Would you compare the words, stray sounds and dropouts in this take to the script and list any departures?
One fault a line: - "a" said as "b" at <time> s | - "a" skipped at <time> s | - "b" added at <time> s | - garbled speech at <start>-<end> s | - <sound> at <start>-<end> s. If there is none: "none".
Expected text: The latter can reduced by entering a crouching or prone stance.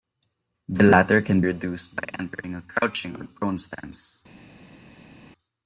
none